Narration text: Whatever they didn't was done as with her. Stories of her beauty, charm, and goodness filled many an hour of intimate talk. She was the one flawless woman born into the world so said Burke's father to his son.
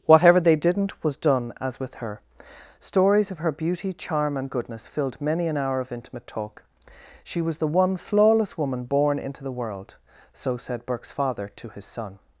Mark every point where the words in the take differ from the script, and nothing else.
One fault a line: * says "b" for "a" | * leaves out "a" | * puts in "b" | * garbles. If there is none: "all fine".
all fine